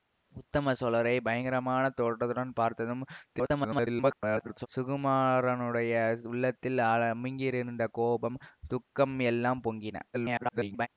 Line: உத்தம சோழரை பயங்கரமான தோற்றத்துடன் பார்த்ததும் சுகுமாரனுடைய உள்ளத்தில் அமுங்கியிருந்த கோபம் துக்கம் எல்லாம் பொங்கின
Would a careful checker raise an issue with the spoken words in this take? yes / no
yes